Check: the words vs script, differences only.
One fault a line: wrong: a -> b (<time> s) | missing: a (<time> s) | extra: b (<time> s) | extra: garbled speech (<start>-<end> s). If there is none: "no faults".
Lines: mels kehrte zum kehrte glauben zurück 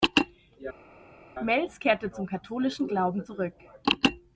wrong: kehrte -> katholischen (2.3 s)